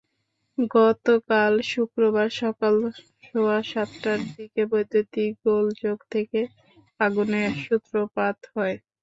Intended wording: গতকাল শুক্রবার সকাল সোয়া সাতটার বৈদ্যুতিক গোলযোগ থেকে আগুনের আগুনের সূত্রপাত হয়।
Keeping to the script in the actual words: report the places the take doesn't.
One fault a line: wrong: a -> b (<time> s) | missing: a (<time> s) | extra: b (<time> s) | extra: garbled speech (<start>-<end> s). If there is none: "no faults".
extra: দিকে (4.3 s)
missing: আগুনের (7.5 s)